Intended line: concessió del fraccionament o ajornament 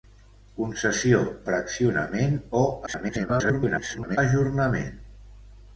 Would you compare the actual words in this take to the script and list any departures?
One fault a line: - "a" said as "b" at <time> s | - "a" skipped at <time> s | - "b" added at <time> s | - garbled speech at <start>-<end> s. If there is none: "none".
- "del" skipped at 1.2 s
- garbled speech at 2.9-4.2 s